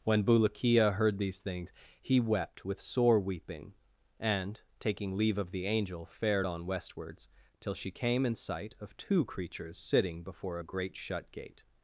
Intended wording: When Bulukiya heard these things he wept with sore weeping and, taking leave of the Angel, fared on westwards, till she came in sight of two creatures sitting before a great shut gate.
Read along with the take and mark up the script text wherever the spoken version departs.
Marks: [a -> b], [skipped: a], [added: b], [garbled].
When Bulukiya heard these things he wept with sore weeping and, taking leave of the Angel, fared on westwards, till she came in sight of two creatures sitting before a great shut gate.